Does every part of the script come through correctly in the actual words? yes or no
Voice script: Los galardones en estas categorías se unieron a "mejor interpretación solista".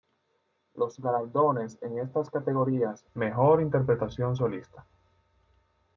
no